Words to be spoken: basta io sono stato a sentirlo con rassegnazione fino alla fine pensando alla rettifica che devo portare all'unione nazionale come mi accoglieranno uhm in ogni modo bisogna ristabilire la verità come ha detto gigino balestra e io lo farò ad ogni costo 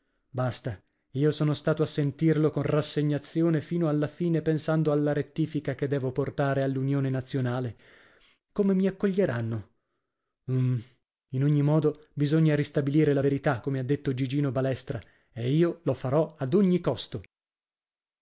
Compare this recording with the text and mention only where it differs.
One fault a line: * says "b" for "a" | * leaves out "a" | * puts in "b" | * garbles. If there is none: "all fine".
all fine